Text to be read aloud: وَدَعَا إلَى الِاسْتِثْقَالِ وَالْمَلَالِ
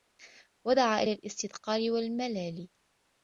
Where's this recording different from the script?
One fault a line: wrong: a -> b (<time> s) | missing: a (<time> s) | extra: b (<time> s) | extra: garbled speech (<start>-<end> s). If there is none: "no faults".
no faults